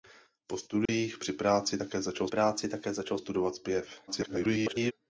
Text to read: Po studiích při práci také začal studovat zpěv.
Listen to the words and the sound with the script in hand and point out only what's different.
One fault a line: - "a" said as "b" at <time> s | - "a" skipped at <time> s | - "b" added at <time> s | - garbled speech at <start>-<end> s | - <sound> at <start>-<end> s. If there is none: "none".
- dropout at 0.9-0.9 s
- "práci také začal" added at 2.3 s
- garbled speech at 4.1-4.9 s